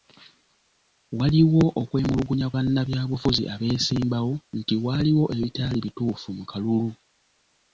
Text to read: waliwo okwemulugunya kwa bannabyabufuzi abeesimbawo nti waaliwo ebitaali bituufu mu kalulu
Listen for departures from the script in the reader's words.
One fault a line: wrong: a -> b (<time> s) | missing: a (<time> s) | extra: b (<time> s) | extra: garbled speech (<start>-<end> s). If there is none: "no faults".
missing: kwa (2.5 s)